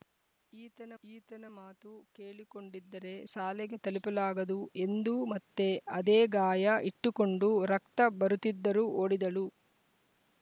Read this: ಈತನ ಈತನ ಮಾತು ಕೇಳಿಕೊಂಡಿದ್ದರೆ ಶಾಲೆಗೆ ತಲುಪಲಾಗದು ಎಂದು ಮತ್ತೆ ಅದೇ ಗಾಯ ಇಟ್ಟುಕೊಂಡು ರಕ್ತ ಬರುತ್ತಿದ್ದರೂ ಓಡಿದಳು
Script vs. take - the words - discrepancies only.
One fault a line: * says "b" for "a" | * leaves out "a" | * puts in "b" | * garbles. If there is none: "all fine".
all fine